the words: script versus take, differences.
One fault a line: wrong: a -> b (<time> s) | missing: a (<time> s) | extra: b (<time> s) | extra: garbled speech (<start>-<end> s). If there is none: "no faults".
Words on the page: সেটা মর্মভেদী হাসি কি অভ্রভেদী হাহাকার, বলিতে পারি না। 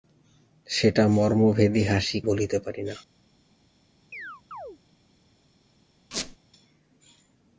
missing: কি অভ্রভেদী হাহাকার (2.2 s)